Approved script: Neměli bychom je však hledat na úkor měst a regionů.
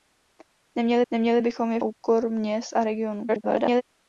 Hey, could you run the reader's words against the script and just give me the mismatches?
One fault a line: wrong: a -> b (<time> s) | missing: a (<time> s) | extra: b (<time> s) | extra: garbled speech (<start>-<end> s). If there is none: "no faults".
extra: neměli (1.1 s)
missing: však hledat na (1.8 s)
extra: garbled speech (3.3-3.8 s)